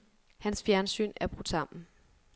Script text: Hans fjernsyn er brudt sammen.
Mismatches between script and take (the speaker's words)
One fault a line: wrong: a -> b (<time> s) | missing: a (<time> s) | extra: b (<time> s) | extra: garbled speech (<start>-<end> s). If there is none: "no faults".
no faults